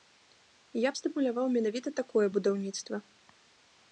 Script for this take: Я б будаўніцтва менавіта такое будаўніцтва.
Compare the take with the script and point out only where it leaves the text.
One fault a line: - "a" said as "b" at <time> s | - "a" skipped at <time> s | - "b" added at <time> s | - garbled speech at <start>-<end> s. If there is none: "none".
- "будаўніцтва" said as "стымуляваў" at 1.0 s